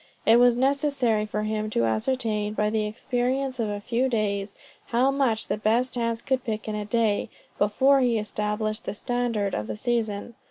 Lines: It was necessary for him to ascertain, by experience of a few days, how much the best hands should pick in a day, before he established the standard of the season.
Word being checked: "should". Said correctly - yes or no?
no